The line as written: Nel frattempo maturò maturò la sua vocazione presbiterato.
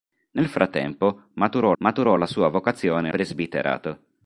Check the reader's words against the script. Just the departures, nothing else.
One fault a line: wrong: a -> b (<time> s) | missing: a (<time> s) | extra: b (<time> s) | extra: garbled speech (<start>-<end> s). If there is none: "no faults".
no faults